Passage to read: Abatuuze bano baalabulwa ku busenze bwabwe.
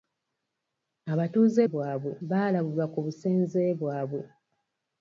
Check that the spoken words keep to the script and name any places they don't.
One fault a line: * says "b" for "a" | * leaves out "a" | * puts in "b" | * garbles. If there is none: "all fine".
* says "bwabwe" for "bano"